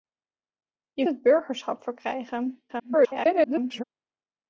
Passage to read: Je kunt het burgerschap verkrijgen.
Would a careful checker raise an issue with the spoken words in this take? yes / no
yes